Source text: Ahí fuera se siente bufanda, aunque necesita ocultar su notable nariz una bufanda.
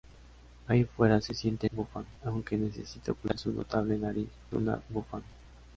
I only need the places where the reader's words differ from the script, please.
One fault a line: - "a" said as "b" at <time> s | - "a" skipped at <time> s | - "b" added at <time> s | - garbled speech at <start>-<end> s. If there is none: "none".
none